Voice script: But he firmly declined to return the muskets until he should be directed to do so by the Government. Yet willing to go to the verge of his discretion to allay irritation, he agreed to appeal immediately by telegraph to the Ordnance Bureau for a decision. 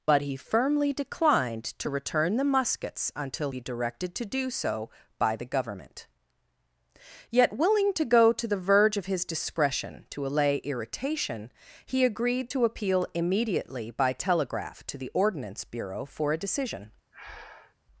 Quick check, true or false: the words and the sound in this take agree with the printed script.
false